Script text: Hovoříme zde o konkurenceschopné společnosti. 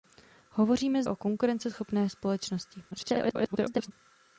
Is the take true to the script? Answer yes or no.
no